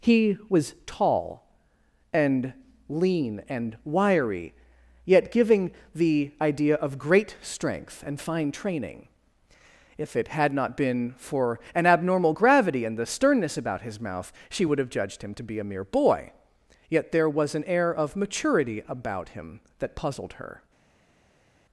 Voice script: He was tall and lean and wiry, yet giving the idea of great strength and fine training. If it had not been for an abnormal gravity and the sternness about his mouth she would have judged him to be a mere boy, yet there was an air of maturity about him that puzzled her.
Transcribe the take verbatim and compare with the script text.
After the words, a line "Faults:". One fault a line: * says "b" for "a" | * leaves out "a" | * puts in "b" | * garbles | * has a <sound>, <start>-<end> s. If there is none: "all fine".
He was tall and lean and wiry, yet giving the idea of great strength and fine training. If it had not been for an abnormal gravity and the sternness about his mouth she would have judged him to be a mere boy, yet there was an air of maturity about him that puzzled her.
Faults:
all fine